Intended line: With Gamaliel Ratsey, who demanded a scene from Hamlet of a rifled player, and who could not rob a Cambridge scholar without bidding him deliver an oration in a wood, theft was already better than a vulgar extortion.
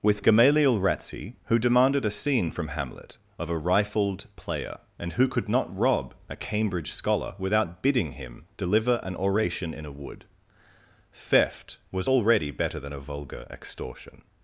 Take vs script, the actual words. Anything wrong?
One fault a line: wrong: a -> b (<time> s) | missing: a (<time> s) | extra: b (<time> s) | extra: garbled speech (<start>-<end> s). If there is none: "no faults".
no faults